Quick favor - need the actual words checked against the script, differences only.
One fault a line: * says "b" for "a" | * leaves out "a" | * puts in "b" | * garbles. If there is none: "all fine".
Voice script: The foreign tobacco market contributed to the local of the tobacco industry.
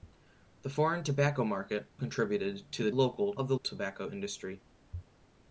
all fine